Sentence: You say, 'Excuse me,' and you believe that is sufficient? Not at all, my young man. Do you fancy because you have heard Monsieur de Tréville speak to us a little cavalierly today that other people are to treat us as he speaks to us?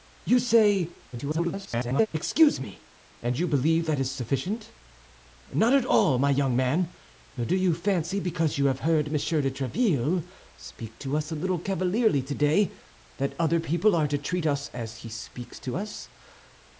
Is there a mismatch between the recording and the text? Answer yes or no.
yes